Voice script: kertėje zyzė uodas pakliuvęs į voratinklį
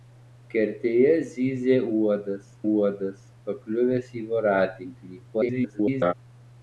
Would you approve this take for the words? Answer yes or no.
no